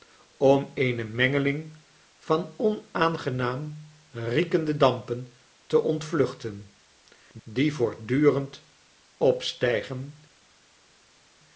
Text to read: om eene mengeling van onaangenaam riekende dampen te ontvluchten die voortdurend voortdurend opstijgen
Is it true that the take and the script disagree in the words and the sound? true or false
true